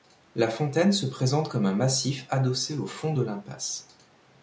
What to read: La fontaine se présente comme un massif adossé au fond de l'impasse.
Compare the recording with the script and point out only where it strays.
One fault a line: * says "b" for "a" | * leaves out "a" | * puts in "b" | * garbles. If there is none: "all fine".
all fine